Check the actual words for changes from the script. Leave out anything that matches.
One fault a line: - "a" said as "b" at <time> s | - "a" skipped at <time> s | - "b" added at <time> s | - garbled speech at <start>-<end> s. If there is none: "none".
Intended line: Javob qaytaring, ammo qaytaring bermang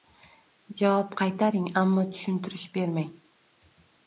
- "qaytaring" said as "tushuntirish" at 2.1 s